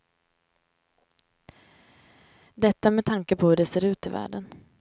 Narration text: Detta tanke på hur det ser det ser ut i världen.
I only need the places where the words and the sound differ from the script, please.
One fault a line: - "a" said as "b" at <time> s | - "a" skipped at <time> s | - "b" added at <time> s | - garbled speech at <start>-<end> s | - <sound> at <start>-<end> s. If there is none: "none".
- "med" added at 2.9 s
- "det ser" skipped at 3.8 s